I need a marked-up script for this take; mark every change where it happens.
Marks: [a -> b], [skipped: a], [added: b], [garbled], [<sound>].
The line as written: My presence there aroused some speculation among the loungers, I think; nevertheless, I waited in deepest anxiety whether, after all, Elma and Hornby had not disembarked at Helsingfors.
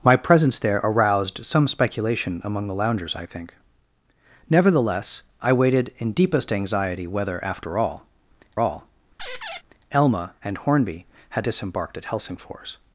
My presence there aroused some speculation among the loungers, I think; nevertheless, I waited in deepest anxiety whether, after all, [added: all] [squeak] Elma and Hornby had [skipped: not] disembarked at Helsingfors.